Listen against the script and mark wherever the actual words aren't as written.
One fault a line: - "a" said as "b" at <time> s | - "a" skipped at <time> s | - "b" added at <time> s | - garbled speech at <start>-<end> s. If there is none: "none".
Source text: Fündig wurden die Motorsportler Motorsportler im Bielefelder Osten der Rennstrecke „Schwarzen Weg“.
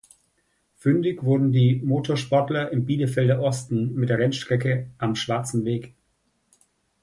- "Motorsportler" skipped at 2.7 s
- "mit" added at 3.9 s
- "Am" added at 5.0 s